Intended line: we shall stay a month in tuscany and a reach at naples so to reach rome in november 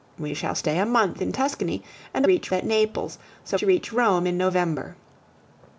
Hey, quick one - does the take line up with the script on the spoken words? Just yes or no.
yes